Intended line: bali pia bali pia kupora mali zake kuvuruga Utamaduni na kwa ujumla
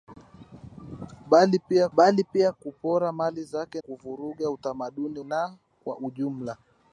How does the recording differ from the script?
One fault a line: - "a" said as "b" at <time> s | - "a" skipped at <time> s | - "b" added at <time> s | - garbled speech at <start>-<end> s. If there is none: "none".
none